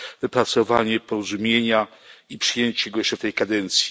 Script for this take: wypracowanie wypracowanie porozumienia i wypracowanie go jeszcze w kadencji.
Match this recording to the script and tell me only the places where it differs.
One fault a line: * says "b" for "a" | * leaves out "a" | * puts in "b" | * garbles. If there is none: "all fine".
* leaves out "wypracowanie"
* says "przyjęcie" for "wypracowanie"
* puts in "tej"